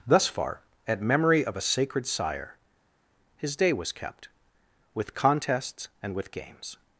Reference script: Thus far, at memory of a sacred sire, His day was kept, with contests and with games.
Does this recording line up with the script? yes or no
yes